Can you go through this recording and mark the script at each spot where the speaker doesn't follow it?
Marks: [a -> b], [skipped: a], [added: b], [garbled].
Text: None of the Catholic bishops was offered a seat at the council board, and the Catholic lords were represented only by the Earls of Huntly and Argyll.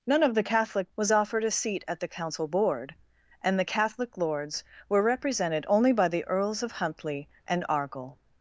None of the Catholic [skipped: bishops] was offered a seat at the council board, and the Catholic lords were represented only by the Earls of Huntly and Argyll.